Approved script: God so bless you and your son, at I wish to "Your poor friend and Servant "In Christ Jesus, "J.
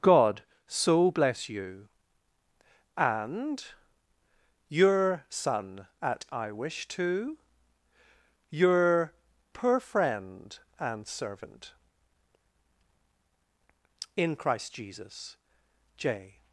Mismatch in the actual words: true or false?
false